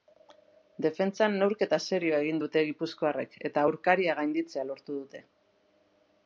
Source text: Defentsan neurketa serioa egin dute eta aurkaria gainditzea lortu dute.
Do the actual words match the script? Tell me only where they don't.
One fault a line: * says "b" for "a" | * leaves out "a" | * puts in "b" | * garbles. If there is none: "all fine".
* puts in "gipuzkoarrek"